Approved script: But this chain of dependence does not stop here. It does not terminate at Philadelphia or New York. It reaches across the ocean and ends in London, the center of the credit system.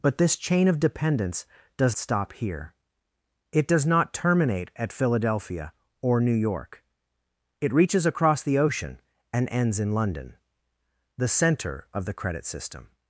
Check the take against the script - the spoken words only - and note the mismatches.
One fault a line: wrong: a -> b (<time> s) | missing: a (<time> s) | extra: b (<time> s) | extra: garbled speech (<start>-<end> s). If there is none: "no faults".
missing: not (1.9 s)